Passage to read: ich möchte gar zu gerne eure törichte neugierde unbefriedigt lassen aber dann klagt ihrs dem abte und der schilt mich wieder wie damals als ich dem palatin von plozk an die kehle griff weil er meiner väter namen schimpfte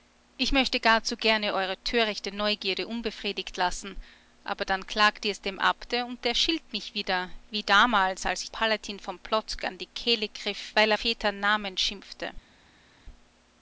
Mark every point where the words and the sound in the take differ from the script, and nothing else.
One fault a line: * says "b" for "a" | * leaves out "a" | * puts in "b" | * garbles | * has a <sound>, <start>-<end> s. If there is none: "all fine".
* leaves out "dem"
* leaves out "meiner"